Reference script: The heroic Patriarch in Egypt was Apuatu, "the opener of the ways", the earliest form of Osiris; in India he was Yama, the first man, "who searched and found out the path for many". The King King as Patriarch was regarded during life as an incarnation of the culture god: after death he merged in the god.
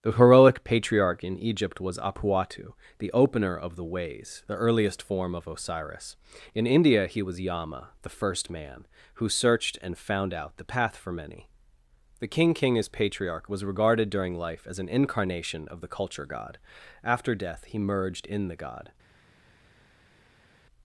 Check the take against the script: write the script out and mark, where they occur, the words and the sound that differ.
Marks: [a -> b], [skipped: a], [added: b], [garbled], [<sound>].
The heroic Patriarch in Egypt was Apuatu, "the opener of the ways", the earliest form of Osiris; in India he was Yama, the first man, "who searched and found out the path for many". The King King as Patriarch was regarded during life as an incarnation of the culture god: after death he merged in the god.